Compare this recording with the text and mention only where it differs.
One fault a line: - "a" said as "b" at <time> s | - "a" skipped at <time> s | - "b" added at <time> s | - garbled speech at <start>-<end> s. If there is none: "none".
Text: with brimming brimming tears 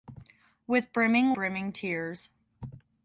none